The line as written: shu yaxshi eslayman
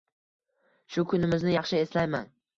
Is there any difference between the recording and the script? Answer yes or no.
yes